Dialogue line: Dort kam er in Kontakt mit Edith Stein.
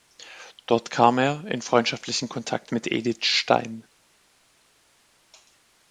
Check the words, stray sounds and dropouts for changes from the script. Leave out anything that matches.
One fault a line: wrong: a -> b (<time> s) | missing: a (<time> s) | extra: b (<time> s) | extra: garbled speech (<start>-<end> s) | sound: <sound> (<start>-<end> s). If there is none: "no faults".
extra: freundschaftlichen (1.6 s)